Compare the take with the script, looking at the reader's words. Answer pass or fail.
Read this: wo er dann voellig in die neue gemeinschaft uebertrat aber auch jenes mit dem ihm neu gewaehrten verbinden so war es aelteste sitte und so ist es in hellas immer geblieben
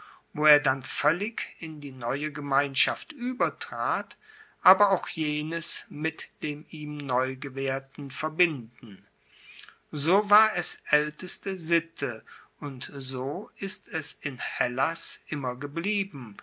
pass